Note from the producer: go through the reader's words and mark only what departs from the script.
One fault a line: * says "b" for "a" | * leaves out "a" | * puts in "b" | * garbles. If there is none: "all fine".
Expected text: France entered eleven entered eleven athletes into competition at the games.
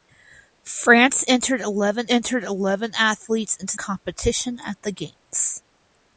all fine